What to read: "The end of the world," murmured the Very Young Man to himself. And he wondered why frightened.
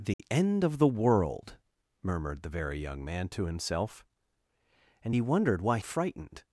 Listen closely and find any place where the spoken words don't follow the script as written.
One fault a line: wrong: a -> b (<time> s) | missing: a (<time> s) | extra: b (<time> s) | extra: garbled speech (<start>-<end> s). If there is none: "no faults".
no faults